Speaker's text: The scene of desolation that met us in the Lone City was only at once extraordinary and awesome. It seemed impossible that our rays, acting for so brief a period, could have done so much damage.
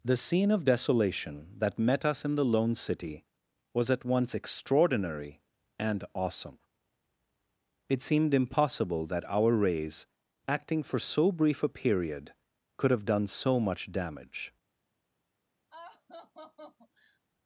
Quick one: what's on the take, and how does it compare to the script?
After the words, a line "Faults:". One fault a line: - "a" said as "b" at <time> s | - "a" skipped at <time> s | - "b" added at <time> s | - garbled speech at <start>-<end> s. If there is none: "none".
The scene of desolation that met us in the Lone City was at once extraordinary and awesome. It seemed impossible that our rays, acting for so brief a period, could have done so much damage.
Faults:
- "only" skipped at 3.9 s